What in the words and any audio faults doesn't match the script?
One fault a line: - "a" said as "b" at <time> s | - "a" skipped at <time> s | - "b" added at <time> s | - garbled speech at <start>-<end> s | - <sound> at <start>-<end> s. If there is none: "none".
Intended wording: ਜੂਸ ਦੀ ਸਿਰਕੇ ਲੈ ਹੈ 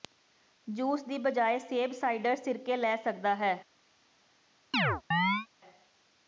- "ਬਜਾਏ ਸੇਬ ਸਾਈਡਰ" added at 1.2 s
- "ਸਕਦਾ" added at 3.0 s
- chirp at 4.7-5.5 s